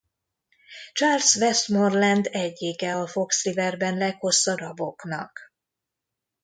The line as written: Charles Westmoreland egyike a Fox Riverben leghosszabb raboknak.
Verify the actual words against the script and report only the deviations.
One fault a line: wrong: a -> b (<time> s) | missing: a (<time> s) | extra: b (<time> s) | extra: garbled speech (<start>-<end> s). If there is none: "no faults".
no faults